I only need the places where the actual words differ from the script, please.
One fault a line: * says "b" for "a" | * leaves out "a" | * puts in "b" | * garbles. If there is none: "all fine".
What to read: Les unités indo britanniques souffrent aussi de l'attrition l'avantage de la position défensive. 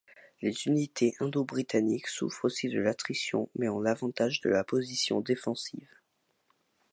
* puts in "mais ont"